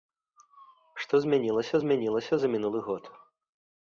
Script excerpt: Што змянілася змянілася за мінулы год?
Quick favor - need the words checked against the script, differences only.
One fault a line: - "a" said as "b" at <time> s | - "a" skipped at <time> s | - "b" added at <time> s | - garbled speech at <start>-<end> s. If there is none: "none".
none